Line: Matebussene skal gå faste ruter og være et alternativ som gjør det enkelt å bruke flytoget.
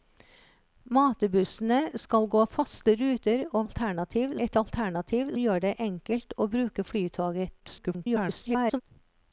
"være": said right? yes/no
no